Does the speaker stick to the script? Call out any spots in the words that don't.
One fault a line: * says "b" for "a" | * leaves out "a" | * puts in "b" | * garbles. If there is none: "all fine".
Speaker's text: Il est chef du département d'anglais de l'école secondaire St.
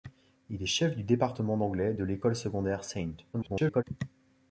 * garbles